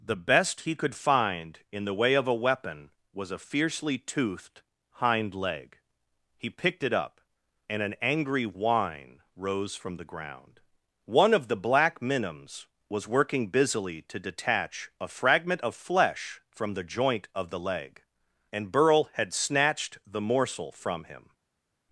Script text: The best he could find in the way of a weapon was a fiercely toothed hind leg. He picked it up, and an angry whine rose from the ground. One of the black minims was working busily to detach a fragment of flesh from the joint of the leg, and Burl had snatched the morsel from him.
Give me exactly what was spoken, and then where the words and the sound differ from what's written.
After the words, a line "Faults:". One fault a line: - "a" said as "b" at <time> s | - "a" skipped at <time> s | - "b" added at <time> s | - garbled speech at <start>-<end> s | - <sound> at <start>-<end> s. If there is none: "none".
The best he could find in the way of a weapon was a fiercely toothed hind leg. He picked it up, and an angry whine rose from the ground. One of the black minims was working busily to detach a fragment of flesh from the joint of the leg, and Burl had snatched the morsel from him.
Faults:
none